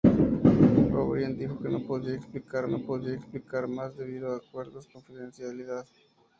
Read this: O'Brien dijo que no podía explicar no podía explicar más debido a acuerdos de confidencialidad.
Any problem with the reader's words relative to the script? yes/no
no